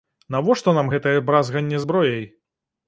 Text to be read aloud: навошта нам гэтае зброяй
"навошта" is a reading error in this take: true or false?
false